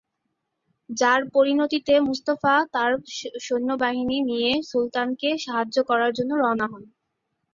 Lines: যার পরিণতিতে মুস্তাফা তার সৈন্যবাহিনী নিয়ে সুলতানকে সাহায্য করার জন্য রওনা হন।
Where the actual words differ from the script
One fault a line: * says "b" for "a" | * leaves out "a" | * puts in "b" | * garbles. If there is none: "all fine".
all fine